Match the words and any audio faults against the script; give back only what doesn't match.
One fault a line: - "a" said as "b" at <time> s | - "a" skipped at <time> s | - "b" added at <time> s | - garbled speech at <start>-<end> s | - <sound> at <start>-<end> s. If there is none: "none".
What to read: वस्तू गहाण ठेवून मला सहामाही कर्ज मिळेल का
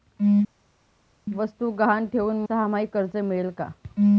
- "मला" skipped at 2.4 s